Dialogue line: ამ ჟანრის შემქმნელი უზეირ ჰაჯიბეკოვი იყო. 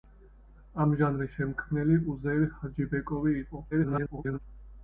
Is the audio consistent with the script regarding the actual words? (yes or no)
no